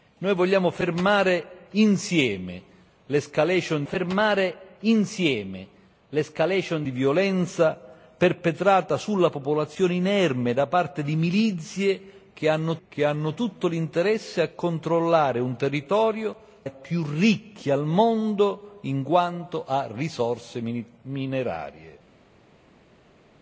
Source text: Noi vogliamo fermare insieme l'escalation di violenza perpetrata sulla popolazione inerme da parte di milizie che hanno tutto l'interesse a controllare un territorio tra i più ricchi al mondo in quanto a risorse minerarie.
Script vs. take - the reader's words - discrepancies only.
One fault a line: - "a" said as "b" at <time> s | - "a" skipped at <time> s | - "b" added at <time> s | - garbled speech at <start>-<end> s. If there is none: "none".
- "fermare insieme l'escalation" added at 3.8 s
- "che hanno" added at 12.9 s
- "tra" skipped at 16.4 s